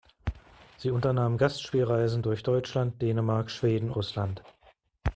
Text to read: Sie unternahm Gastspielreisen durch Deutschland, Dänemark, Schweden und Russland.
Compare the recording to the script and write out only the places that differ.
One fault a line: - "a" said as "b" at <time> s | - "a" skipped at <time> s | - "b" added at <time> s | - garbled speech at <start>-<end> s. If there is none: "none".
- "und" skipped at 3.9 s